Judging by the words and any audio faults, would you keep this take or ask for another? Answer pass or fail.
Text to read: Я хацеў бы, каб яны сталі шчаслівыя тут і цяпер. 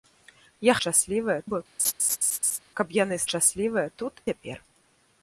fail